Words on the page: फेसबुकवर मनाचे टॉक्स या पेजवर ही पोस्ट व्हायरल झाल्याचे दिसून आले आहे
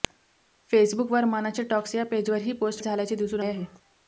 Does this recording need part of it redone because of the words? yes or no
yes